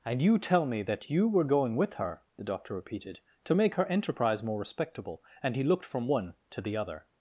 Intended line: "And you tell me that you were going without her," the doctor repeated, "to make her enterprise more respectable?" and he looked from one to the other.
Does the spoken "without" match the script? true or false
false